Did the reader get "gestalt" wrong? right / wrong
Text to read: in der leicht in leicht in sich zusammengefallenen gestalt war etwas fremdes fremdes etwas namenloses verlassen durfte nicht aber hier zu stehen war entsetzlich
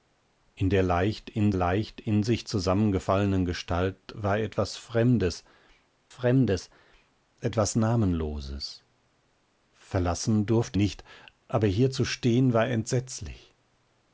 right